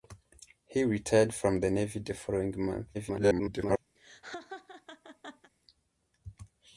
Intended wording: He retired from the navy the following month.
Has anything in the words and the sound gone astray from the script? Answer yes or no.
yes